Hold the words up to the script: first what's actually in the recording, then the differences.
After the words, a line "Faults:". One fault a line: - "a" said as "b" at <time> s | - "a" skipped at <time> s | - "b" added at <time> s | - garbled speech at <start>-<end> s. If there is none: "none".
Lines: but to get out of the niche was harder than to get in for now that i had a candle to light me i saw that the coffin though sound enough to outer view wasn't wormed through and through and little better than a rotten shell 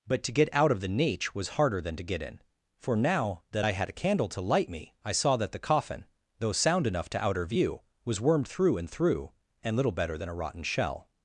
but to get out of the niche was harder than to get in for now that i had a candle to light me i saw that the coffin though sound enough to outer view was wormed through and through and little better than a rotten shell
Faults:
- "wasn't" said as "was" at 8.0 s